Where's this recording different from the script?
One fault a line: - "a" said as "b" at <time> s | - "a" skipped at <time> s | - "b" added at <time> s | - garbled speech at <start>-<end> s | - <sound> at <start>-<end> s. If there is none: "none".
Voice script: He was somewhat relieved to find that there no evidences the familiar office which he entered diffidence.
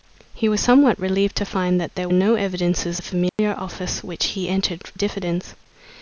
- dropout at 3.3-3.4 s